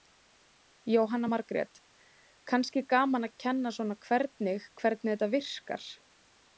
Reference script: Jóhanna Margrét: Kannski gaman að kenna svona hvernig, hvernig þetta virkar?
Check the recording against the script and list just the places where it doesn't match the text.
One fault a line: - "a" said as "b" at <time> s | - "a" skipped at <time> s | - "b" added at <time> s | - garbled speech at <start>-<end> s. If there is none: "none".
none